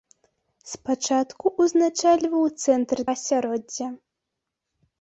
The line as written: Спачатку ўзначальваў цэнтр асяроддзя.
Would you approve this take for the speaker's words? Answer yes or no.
yes